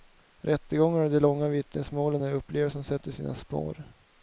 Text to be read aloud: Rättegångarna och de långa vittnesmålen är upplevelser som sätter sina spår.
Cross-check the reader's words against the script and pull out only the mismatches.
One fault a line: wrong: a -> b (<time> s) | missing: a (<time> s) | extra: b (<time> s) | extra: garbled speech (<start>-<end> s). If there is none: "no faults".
no faults